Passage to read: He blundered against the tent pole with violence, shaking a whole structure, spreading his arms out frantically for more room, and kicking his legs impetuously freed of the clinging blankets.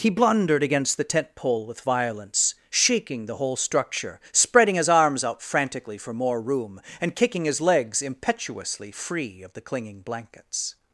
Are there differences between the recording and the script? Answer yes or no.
yes